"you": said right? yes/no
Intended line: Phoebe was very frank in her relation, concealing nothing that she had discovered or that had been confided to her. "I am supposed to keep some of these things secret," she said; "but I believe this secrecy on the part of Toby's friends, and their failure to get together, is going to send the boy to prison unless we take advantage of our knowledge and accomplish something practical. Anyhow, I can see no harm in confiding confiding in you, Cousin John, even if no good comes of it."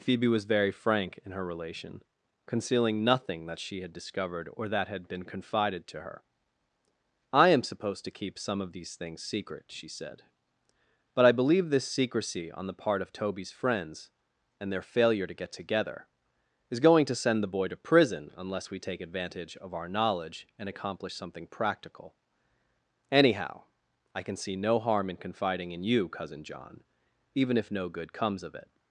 yes